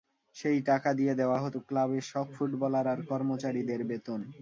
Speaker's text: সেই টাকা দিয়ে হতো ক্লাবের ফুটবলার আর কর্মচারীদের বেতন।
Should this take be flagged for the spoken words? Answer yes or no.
yes